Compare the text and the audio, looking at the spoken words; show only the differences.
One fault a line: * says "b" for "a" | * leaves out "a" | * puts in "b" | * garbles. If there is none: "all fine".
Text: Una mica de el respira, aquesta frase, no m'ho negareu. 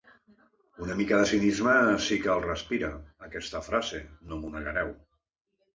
* puts in "cinisme sí que"